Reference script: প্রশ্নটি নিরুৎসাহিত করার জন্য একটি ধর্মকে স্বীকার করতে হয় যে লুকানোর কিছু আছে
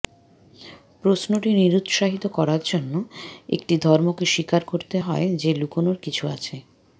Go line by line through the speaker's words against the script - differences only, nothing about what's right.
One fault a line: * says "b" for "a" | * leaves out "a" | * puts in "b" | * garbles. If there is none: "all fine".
all fine